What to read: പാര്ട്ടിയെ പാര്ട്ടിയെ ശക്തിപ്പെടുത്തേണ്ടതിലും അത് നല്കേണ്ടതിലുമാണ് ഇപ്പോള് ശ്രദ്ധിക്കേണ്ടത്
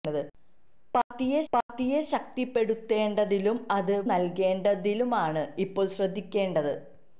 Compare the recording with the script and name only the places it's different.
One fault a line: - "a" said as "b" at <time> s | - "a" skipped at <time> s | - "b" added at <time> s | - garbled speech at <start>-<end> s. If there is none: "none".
none